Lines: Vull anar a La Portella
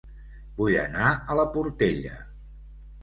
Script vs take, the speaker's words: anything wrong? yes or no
no